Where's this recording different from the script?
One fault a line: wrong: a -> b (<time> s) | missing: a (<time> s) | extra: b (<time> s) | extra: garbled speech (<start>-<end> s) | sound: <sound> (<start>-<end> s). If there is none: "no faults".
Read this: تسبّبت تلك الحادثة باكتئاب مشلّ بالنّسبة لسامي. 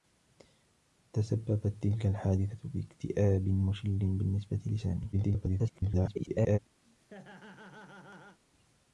extra: garbled speech (5.1-6.6 s)
sound: laugh (6.8-8.4 s)